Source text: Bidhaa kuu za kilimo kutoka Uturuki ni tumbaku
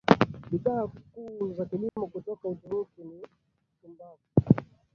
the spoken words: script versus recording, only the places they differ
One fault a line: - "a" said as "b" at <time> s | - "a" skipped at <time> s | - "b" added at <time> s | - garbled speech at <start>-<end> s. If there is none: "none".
none